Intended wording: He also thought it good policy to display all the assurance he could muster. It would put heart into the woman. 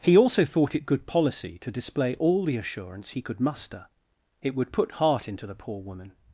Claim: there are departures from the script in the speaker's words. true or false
true